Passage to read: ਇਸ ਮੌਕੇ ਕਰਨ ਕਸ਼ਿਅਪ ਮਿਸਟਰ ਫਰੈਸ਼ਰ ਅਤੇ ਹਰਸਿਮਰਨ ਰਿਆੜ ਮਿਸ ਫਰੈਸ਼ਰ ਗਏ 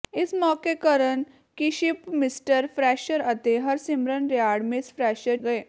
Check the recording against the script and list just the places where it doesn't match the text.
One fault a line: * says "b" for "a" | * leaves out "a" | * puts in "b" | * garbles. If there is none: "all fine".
all fine